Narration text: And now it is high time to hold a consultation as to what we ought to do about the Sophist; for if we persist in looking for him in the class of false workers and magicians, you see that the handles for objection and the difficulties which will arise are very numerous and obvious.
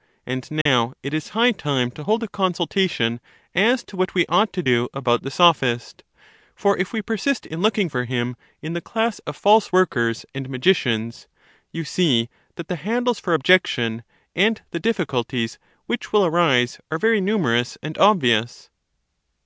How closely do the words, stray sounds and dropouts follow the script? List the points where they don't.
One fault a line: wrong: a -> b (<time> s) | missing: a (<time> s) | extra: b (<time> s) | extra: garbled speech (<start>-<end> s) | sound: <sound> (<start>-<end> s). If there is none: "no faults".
sound: dropout (0.6-0.7 s)